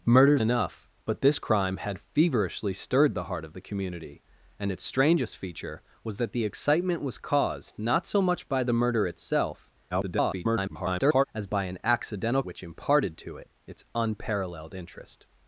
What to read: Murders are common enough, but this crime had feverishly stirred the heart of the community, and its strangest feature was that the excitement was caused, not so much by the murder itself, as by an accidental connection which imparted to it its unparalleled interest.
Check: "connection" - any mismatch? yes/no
yes